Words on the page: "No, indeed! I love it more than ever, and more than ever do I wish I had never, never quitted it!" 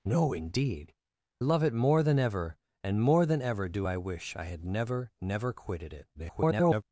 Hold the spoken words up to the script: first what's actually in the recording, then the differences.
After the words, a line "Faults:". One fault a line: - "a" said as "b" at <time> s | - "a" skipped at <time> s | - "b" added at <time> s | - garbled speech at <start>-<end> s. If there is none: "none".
"No, indeed! love it more than ever, and more than ever do I wish I had never, never quitted it!" [garbled]
Faults:
- "I" skipped at 0.9 s
- garbled speech at 6.1-6.8 s